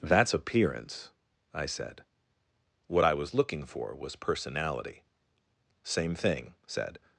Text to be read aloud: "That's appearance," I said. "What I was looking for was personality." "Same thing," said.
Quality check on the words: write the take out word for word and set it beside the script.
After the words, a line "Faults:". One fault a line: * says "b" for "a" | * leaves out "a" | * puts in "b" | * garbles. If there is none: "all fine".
"That's appearance," I said. "What I was looking for was personality." "Same thing," said.
Faults:
all fine